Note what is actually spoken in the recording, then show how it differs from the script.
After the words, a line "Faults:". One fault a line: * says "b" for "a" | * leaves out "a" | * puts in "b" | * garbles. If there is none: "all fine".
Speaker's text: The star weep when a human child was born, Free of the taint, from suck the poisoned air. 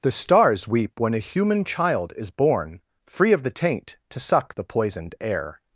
The stars weep when a human child is born, Free of the taint, to suck the poisoned air.
Faults:
* says "stars" for "star"
* says "is" for "was"
* says "to" for "from"